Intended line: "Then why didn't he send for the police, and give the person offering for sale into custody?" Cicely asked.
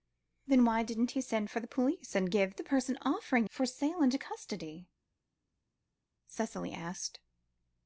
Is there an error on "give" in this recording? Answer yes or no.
no